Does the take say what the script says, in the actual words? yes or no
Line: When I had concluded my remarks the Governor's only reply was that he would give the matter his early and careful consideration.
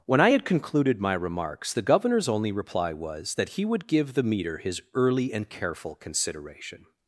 no